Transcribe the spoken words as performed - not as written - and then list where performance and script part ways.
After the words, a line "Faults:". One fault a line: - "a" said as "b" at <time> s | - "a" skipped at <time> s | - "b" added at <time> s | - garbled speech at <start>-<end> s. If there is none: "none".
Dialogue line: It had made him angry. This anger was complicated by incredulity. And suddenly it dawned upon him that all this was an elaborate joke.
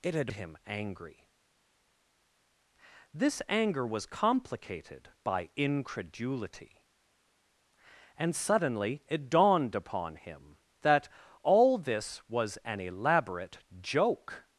It had him angry. This anger was complicated by incredulity. And suddenly it dawned upon him that all this was an elaborate joke.
Faults:
- "made" skipped at 0.3 s